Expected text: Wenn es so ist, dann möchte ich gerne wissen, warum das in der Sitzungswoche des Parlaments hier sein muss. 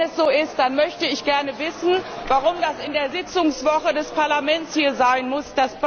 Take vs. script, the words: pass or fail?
pass